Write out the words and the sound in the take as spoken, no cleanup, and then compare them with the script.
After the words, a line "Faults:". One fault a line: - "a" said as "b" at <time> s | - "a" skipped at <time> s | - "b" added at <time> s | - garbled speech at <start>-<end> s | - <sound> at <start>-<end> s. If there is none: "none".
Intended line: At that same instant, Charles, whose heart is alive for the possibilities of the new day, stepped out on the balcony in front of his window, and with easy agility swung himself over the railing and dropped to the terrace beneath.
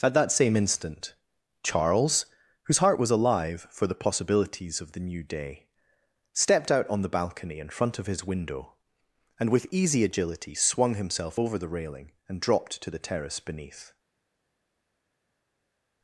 At that same instant, Charles, whose heart was alive for the possibilities of the new day, stepped out on the balcony in front of his window, and with easy agility swung himself over the railing and dropped to the terrace beneath.
Faults:
- "is" said as "was" at 3.0 s